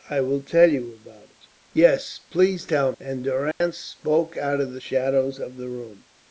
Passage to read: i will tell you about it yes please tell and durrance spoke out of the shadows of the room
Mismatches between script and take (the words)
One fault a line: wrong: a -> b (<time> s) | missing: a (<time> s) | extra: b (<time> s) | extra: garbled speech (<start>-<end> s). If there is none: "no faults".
no faults